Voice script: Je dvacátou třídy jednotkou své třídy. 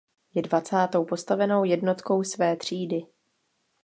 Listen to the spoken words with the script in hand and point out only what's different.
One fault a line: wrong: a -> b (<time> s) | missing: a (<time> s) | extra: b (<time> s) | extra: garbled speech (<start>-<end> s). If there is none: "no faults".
wrong: třídy -> postavenou (1.0 s)